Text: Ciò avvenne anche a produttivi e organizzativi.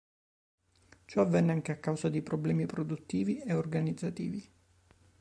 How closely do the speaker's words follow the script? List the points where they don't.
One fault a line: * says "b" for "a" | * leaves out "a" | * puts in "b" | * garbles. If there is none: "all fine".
* puts in "causa di problemi"